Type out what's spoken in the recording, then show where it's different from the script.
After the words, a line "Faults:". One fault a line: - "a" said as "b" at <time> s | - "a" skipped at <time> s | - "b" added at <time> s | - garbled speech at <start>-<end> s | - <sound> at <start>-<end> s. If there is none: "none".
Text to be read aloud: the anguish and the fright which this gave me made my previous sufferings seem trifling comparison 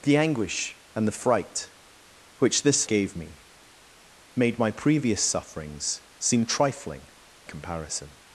the anguish and the fright which this gave me made my previous sufferings seem trifling comparison
Faults:
none